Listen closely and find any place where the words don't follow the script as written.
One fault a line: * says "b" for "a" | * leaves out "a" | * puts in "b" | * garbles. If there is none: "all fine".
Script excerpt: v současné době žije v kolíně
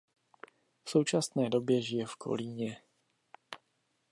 all fine